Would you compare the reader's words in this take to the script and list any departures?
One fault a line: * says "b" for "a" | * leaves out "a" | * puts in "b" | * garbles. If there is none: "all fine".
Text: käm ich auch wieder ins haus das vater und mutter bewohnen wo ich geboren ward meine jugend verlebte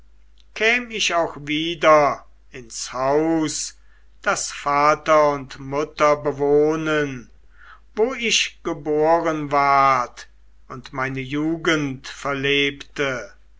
* puts in "und"